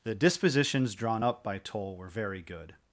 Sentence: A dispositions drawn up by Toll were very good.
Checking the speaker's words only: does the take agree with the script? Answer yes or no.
no